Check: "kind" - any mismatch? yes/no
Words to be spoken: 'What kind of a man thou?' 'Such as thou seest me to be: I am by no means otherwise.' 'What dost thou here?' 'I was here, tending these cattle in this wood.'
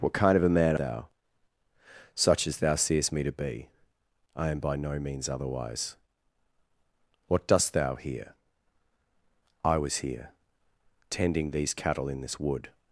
no